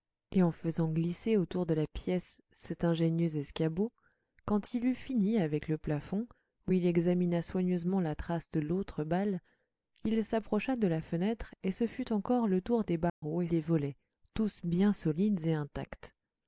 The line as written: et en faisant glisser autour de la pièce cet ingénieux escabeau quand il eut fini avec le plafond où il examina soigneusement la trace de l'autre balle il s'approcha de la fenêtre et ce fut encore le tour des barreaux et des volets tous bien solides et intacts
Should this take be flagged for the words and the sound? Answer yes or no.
yes